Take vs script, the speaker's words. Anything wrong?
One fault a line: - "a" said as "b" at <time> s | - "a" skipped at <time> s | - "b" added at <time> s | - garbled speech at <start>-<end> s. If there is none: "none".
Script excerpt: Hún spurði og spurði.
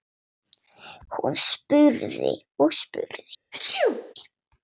none